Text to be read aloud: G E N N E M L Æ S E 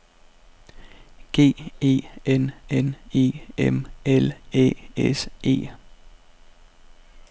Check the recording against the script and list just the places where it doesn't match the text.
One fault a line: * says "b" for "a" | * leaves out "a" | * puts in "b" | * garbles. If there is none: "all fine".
all fine